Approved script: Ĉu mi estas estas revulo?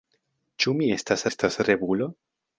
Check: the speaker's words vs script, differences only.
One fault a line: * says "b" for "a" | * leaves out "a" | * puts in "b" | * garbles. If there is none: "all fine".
all fine